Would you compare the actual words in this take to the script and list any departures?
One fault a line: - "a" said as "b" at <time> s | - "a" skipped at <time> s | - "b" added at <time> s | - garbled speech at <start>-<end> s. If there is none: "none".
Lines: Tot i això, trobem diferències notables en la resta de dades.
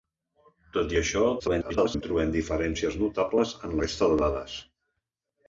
- garbled speech at 1.4-2.0 s
- "la" skipped at 3.8 s